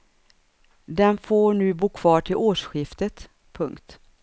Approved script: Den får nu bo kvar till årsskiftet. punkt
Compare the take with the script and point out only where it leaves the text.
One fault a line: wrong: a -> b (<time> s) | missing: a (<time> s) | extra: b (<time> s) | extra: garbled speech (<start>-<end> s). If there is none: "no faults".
no faults